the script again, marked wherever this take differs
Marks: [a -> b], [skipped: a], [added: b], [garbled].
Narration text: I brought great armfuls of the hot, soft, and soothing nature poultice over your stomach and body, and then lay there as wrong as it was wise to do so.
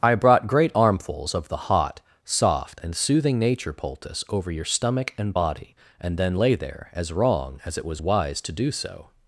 I brought great armfuls of the hot, soft, and soothing nature poultice over your stomach and body, and then lay there as wrong as it was wise to do so.